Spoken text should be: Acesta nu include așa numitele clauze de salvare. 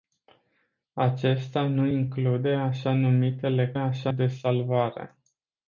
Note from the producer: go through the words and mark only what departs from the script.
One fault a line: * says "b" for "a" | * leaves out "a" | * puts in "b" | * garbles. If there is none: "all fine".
* says "așa" for "clauze"